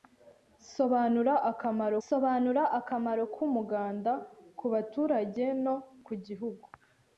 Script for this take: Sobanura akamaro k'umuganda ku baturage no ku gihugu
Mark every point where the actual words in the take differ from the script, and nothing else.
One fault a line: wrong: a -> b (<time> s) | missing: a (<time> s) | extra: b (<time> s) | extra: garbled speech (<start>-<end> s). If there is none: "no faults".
extra: sobanura akamaro (2.1 s)